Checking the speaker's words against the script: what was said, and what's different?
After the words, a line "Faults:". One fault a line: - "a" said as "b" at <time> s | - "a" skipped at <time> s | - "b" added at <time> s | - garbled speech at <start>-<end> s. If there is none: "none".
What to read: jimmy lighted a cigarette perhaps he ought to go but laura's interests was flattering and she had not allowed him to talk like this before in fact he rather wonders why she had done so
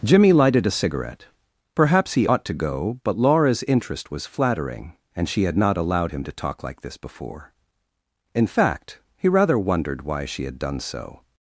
jimmy lighted a cigarette perhaps he ought to go but laura's interest was flattering and she had not allowed him to talk like this before in fact he rather wondered why she had done so
Faults:
- "interests" said as "interest" at 3.6 s
- "wonders" said as "wondered" at 9.6 s